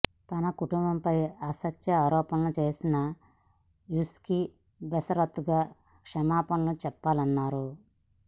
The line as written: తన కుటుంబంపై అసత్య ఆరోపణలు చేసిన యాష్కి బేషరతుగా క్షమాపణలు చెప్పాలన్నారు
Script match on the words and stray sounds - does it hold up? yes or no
yes